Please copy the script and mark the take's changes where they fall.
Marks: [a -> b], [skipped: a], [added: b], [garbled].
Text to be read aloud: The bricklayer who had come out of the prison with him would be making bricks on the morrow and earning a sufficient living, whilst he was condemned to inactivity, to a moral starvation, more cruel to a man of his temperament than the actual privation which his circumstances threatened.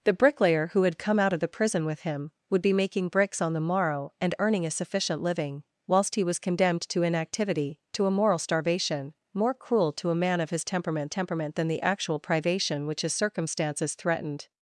The bricklayer who had come out of the prison with him would be making bricks on the morrow and earning a sufficient living, whilst he was condemned to inactivity, to a moral starvation, more cruel to a man of his temperament [added: temperament] than the actual privation which his circumstances threatened.